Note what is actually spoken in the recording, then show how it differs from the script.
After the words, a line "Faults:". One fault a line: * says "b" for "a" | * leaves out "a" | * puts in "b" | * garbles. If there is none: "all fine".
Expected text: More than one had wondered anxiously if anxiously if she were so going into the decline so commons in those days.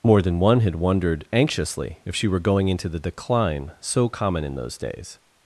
More than one had wondered anxiously if she were going into the decline so common in those days.
Faults:
* leaves out "anxiously if"
* leaves out "so"
* says "common" for "commons"